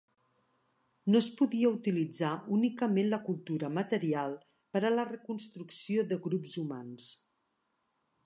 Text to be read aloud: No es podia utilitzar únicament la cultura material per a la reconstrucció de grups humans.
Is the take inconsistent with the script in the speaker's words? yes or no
no